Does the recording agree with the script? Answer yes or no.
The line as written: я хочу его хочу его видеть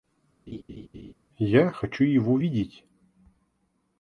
no